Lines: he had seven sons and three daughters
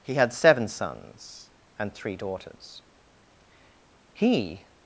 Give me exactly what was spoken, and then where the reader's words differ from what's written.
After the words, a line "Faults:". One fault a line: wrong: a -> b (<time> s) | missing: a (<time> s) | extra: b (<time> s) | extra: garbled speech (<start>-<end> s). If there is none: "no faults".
he had seven sons and three daughters he
Faults:
extra: he (4.1 s)